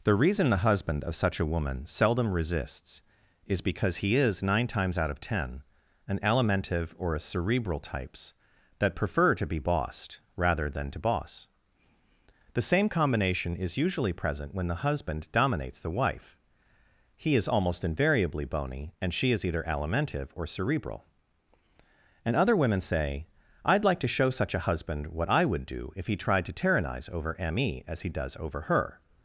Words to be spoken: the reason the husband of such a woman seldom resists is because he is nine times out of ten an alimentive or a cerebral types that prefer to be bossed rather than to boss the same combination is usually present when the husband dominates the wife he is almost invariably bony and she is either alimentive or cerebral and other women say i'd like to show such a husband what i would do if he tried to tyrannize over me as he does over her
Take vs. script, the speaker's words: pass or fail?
pass